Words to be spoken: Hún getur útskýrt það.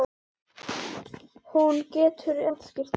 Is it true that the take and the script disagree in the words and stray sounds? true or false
false